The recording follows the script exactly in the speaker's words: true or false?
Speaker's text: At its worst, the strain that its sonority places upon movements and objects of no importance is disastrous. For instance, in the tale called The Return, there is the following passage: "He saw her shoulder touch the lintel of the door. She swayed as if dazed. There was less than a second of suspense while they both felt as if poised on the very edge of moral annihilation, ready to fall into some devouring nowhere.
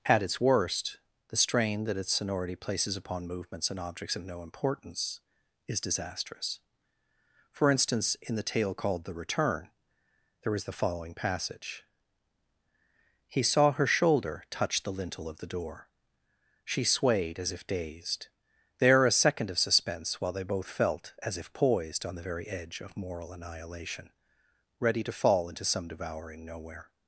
false